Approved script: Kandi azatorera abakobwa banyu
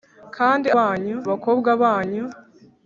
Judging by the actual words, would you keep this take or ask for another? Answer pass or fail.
fail